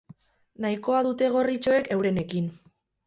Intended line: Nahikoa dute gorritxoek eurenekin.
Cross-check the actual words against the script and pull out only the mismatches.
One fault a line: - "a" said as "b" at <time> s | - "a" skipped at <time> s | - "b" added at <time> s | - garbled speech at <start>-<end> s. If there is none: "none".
none